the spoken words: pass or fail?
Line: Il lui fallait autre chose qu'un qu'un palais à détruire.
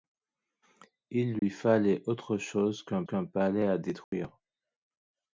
pass